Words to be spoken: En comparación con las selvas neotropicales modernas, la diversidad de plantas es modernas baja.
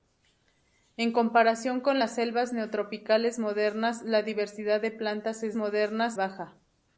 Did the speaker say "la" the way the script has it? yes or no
yes